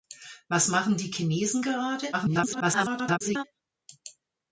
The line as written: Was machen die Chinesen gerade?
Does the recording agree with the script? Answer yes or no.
no